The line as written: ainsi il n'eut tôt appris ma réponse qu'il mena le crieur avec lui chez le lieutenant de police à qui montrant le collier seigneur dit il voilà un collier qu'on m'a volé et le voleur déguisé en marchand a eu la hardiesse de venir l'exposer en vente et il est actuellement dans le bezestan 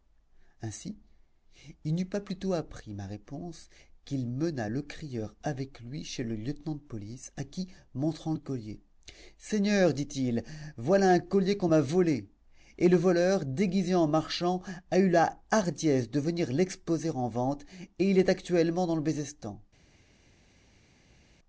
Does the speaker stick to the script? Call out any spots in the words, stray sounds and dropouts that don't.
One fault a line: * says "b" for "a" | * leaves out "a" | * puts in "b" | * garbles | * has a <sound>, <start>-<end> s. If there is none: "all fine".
* puts in "pas plus"